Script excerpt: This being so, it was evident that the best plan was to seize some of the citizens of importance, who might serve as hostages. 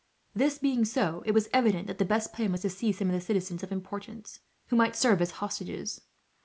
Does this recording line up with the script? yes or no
yes